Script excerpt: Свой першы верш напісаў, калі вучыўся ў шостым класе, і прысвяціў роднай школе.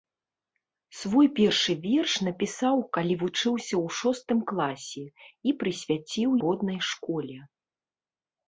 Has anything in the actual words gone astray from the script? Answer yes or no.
no